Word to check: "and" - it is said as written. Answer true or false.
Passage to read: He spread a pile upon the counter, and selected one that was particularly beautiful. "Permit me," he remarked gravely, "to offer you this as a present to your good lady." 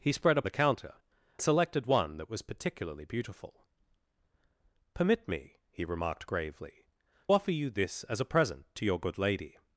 false